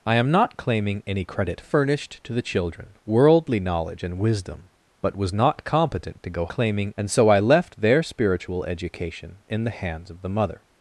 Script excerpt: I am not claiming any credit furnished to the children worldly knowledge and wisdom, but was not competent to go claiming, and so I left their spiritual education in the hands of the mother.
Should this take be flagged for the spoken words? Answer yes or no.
no